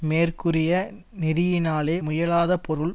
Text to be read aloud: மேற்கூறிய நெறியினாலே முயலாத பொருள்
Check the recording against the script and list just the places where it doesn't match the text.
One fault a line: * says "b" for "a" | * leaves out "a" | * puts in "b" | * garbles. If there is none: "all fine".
all fine